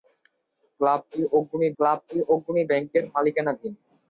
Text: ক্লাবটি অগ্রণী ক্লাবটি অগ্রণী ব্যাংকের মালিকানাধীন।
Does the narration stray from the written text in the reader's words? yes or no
no